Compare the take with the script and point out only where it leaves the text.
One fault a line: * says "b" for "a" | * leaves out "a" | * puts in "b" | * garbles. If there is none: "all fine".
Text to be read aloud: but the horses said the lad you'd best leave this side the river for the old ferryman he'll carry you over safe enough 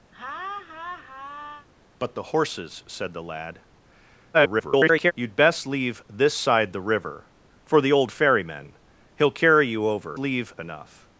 * garbles
* says "leave" for "safe"